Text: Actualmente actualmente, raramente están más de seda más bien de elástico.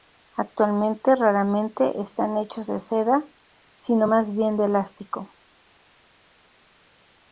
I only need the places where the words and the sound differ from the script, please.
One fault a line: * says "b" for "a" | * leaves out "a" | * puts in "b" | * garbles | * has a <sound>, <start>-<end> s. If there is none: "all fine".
* leaves out "actualmente"
* says "hechos" for "más"
* puts in "sino"